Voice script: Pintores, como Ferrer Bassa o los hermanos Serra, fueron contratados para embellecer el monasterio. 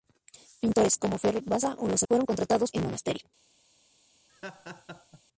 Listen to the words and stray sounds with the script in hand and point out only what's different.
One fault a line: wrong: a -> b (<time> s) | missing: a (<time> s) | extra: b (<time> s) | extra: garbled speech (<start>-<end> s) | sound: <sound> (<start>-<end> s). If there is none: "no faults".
missing: hermanos Serra (2.0 s)
missing: para embellecer (2.7 s)
sound: laugh (4.3-5.2 s)